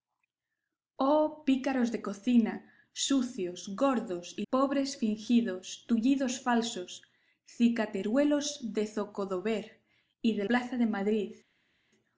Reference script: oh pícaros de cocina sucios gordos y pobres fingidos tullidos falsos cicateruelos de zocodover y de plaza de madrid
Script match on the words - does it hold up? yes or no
yes